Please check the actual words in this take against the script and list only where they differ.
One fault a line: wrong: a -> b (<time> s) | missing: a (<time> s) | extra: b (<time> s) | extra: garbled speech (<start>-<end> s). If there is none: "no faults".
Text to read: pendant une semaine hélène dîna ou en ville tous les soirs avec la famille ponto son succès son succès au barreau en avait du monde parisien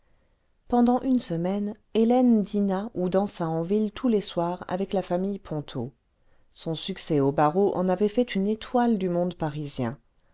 extra: dansa (3.1 s)
missing: son succès (7.2 s)
extra: fait une étoile (8.1 s)